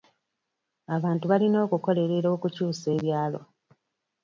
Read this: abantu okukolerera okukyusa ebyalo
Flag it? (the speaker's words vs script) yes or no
yes